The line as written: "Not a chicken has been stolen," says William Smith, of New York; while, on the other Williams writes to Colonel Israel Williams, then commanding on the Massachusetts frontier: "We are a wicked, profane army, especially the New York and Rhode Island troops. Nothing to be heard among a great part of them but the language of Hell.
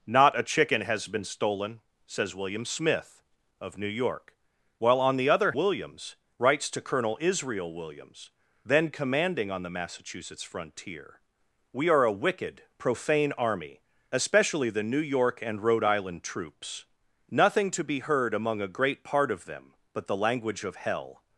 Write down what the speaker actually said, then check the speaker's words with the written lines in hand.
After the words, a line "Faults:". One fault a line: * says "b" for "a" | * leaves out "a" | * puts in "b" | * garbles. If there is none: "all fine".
"Not a chicken has been stolen," says William Smith, of New York; while, on the other Williams writes to Colonel Israel Williams, then commanding on the Massachusetts frontier: "We are a wicked, profane army, especially the New York and Rhode Island troops. Nothing to be heard among a great part of them but the language of Hell.
Faults:
all fine